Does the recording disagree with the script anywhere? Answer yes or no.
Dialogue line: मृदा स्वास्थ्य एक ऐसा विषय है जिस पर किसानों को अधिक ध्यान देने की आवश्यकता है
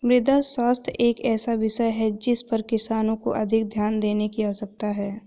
no